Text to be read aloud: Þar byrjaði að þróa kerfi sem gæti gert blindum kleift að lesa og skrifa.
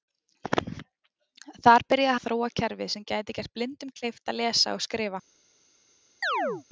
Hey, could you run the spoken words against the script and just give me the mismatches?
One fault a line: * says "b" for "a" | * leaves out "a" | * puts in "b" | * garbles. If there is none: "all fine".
all fine